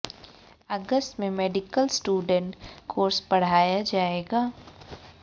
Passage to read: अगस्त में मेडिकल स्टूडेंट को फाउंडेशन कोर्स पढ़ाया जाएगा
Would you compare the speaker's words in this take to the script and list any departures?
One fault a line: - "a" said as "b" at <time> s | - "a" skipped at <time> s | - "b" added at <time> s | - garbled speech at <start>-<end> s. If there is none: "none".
- "को फाउंडेशन" skipped at 2.5 s